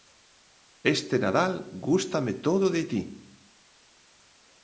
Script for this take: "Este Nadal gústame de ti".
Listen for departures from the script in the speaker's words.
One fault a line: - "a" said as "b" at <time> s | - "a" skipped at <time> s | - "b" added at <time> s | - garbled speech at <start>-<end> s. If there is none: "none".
- "todo" added at 2.3 s